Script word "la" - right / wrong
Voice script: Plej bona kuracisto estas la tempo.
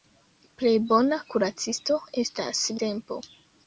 wrong